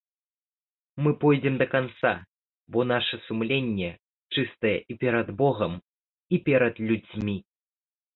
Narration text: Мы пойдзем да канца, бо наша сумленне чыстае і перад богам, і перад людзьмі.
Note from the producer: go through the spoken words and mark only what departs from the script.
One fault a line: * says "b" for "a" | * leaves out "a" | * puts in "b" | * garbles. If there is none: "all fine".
all fine